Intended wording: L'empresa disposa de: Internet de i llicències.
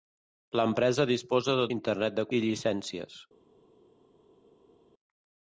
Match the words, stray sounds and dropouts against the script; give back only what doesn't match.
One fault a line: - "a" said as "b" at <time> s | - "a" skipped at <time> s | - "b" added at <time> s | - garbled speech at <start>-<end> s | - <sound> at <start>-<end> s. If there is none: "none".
none